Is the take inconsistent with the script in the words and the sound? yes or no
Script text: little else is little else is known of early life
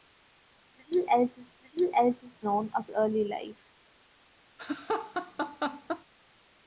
yes